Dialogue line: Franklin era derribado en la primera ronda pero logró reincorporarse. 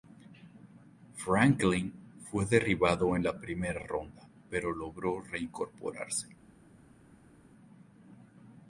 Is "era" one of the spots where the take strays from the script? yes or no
yes